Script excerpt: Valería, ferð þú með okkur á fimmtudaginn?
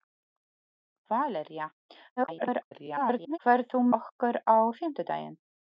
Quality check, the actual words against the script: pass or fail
fail